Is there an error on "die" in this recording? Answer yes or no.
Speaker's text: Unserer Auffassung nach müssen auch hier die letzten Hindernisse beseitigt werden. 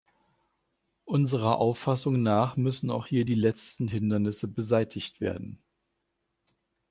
no